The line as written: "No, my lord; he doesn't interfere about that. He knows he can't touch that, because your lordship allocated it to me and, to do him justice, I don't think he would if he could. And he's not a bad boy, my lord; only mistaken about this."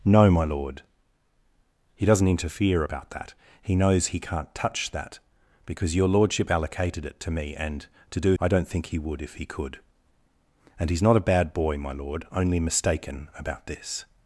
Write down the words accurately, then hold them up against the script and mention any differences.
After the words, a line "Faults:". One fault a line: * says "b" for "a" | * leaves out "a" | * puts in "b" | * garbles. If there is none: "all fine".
"No, my lord; he doesn't interfere about that. He knows he can't touch that, because your lordship allocated it to me and, to do I don't think he would if he could. And he's not a bad boy, my lord; only mistaken about this."
Faults:
* leaves out "him justice"